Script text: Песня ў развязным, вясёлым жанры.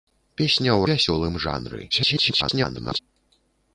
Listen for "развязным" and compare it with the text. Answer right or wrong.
wrong